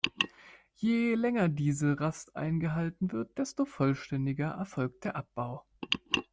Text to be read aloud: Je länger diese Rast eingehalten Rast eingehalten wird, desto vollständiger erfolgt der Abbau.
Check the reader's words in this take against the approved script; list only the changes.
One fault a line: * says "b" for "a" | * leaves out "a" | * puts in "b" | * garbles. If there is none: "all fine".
* leaves out "Rast eingehalten"